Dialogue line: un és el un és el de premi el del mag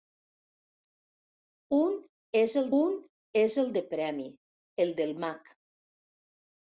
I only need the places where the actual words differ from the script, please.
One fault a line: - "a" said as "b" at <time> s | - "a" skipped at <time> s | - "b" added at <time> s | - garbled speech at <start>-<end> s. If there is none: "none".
none